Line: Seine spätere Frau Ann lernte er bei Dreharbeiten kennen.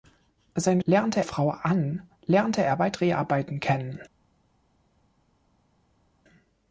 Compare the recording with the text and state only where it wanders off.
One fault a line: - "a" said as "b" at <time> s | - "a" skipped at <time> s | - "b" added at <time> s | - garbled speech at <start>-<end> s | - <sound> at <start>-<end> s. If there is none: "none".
- "spätere" said as "lernte" at 0.8 s